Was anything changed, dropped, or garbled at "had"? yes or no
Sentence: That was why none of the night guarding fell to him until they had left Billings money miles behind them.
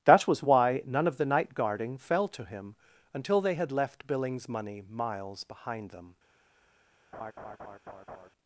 no